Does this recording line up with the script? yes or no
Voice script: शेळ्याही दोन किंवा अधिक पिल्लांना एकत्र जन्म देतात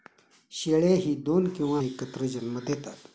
no